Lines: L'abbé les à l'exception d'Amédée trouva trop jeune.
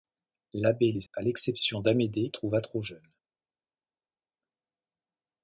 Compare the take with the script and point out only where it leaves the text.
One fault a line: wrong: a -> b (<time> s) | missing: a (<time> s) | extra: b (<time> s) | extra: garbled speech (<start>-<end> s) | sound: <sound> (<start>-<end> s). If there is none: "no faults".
no faults